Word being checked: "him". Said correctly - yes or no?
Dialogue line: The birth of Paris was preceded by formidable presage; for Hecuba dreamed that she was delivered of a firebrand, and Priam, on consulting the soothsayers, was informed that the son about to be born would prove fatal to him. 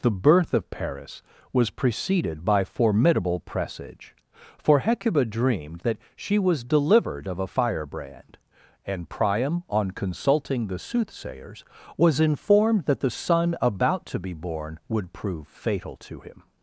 yes